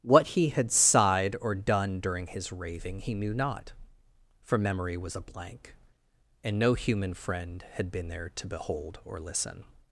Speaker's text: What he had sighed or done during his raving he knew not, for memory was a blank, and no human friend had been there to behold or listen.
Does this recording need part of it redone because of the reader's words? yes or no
no